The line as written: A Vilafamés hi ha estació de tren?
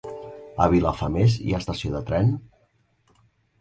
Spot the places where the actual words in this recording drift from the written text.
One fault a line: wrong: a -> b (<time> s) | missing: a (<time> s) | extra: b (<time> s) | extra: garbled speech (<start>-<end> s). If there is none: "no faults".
no faults